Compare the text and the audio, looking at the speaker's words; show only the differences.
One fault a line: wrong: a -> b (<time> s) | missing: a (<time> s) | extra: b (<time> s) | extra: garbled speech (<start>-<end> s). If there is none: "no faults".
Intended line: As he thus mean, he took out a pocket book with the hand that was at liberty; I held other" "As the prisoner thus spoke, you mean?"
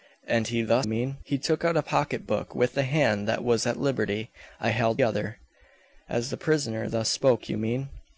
no faults